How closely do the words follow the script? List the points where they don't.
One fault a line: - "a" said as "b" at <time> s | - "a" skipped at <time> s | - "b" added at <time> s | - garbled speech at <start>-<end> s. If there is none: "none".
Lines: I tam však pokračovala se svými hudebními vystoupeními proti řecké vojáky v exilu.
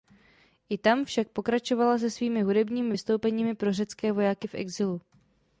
- "proti" said as "pro" at 3.5 s